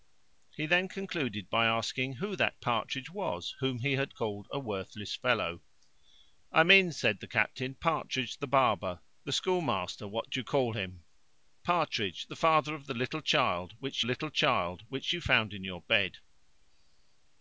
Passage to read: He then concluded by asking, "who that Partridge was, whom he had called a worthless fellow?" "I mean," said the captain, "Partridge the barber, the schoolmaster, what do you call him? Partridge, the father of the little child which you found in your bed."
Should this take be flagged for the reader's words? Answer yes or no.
yes